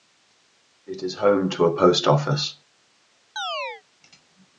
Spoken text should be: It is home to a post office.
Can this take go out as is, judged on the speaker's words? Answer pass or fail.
pass